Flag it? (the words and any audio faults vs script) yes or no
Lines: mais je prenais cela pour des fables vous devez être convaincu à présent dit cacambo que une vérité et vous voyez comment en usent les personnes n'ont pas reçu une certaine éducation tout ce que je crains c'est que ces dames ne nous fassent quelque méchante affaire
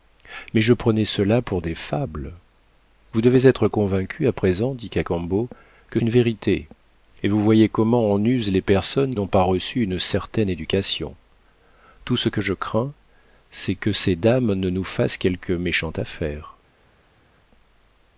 no